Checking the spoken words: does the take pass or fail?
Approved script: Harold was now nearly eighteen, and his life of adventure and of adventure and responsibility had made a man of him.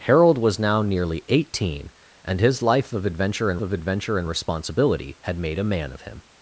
pass